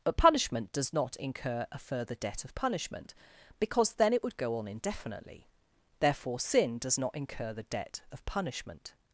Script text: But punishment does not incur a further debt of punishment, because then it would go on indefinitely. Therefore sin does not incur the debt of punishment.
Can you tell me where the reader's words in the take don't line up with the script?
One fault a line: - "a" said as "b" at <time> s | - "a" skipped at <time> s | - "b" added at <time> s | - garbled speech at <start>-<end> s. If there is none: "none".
none